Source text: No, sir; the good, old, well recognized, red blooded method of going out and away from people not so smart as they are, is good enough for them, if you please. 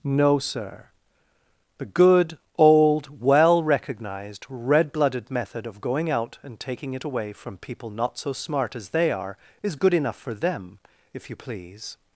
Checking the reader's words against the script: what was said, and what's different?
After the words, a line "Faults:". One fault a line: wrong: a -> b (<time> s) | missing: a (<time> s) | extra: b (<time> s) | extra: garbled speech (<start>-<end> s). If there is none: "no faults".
No, sir; the good, old, well recognized, red blooded method of going out and taking it away from people not so smart as they are, is good enough for them, if you please.
Faults:
extra: taking it (6.6 s)